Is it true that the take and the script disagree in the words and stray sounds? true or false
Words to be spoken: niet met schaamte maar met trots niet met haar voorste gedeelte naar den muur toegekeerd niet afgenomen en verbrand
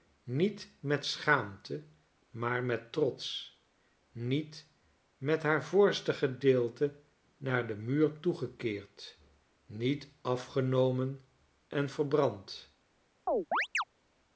true